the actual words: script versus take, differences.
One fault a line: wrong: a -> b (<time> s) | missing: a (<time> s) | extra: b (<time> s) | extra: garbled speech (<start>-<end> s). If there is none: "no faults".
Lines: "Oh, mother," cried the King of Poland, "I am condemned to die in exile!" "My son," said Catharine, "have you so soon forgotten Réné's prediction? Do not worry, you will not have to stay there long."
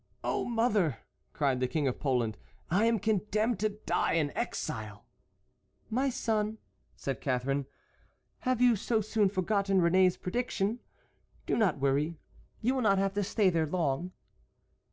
no faults